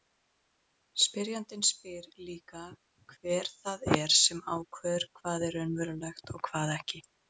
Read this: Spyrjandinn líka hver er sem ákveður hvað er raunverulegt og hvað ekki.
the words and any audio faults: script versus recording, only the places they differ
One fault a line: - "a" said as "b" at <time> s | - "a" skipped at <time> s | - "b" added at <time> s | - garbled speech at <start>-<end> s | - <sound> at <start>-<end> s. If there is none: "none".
- "spyr" added at 1.7 s
- "það" added at 3.6 s